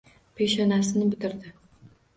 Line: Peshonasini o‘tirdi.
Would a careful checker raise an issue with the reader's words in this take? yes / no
no